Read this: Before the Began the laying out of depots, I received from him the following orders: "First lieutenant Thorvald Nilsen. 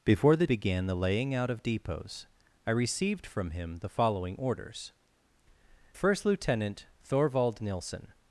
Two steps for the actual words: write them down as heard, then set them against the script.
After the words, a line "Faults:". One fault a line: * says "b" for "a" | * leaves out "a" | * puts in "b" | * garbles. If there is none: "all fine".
Before the Began the laying out of depots, I received from him the following orders: "First lieutenant Thorvald Nilsen.
Faults:
all fine